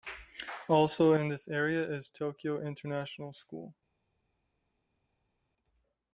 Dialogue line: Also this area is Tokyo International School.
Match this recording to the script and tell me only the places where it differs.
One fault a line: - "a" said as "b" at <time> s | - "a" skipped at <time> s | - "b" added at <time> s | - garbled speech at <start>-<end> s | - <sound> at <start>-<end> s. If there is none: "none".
- "in" added at 1.1 s